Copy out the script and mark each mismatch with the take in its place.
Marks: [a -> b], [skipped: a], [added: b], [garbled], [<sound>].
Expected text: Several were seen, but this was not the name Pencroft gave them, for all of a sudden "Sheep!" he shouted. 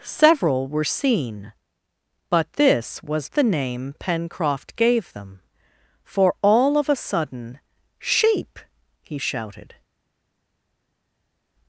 Several were seen, but this was [skipped: not] the name Pencroft gave them, for all of a sudden "Sheep!" he shouted.